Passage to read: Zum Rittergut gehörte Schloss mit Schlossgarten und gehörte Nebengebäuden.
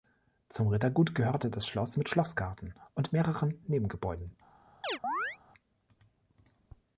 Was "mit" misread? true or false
false